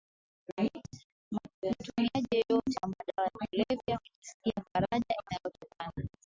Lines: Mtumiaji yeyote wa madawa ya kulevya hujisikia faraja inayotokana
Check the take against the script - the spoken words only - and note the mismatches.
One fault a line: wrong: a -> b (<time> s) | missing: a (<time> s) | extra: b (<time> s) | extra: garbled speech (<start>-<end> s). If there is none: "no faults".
no faults